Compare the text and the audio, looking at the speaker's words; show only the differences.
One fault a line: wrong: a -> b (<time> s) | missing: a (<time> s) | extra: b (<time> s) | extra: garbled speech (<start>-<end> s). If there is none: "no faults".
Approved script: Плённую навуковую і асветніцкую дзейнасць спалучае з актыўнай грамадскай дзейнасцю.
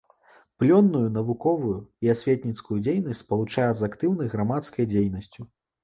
no faults